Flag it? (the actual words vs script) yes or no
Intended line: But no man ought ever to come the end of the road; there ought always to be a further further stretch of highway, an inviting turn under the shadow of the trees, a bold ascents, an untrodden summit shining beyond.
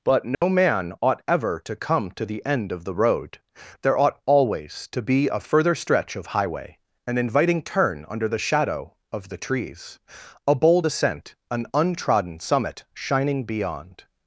yes